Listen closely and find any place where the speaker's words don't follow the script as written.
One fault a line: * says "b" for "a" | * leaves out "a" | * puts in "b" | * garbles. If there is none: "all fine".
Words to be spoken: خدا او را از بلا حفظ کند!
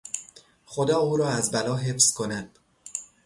all fine